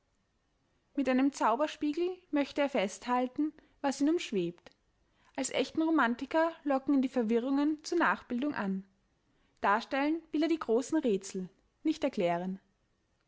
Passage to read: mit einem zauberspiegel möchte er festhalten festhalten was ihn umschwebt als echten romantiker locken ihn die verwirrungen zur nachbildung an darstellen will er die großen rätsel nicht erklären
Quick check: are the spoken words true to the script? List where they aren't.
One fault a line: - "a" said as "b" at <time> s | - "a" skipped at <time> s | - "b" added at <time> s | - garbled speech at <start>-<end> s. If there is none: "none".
- "festhalten" skipped at 3.5 s